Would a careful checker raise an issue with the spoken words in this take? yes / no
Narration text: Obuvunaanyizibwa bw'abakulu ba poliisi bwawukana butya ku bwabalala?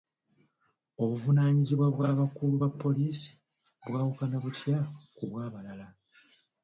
no